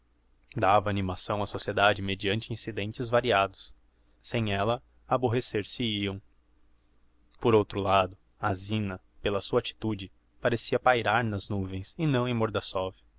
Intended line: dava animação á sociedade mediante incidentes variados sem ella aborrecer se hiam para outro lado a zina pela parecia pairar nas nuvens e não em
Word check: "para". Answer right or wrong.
wrong